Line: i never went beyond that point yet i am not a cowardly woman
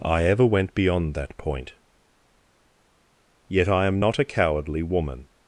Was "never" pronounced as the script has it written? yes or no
no